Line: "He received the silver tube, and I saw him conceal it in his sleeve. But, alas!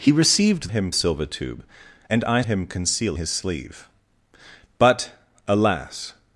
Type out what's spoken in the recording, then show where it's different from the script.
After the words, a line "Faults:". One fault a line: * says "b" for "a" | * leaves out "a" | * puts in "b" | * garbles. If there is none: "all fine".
"He received him silver tube, and I him conceal his sleeve. But, alas!
Faults:
* says "him" for "the"
* leaves out "saw"
* leaves out "it in"